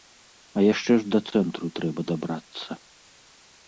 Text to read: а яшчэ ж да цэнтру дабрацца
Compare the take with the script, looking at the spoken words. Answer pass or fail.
fail